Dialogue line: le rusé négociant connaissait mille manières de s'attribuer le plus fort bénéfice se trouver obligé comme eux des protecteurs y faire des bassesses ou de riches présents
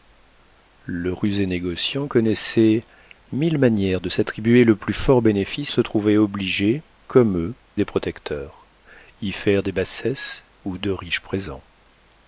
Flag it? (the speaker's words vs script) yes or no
no